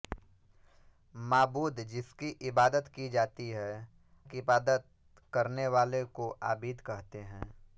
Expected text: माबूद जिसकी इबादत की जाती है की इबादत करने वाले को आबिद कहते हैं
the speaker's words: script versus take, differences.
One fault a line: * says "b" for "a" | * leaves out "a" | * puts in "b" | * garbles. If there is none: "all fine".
all fine